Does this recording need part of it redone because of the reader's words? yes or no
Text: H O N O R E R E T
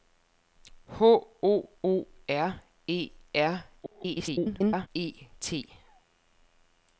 yes